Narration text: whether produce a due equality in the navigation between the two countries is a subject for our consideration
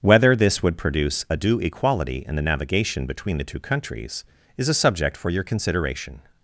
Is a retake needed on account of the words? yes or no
yes